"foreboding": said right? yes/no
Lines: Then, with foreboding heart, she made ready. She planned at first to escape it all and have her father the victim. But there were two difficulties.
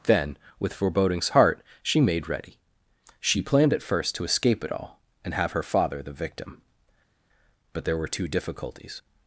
no